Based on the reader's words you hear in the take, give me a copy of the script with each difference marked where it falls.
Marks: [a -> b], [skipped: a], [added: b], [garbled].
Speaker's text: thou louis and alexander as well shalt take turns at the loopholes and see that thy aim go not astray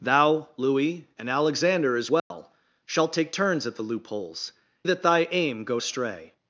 thou louis and alexander as well shalt take turns at the loopholes [skipped: and see] that thy aim go [skipped: not] astray